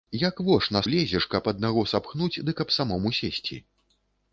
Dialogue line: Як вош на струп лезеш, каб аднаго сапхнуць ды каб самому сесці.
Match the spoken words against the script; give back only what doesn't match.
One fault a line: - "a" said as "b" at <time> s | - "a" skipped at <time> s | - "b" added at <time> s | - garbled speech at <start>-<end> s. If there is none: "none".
- "струп" skipped at 0.8 s